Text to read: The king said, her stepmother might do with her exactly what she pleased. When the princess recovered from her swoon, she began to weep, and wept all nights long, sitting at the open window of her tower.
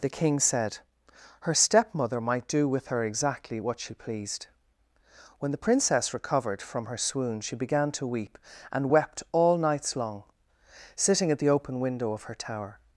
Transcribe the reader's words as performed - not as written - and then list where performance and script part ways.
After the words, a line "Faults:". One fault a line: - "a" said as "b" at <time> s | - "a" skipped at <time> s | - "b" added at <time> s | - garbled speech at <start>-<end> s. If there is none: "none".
The king said, her stepmother might do with her exactly what she pleased. When the princess recovered from her swoon, she began to weep, and wept all nights long, sitting at the open window of her tower.
Faults:
none